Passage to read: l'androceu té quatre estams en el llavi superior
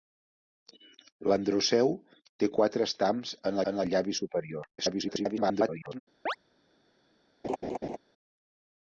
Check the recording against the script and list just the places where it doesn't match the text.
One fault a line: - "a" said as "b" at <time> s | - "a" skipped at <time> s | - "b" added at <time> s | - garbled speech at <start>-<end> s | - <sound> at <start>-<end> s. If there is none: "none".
- "en" added at 3.7 s
- garbled speech at 4.8-6.0 s
- chirp at 6.3-6.4 s
- laugh at 7.4-8.0 s